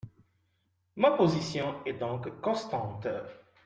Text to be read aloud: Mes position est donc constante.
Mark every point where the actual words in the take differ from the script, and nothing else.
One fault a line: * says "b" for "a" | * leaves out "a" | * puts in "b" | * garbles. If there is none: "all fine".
* says "Ma" for "Mes"